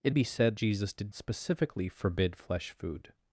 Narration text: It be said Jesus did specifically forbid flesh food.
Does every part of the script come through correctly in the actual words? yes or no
yes